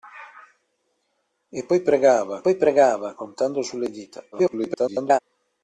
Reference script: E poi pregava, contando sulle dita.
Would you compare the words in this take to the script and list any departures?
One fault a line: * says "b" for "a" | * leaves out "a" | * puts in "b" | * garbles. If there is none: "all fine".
* puts in "poi pregava"
* garbles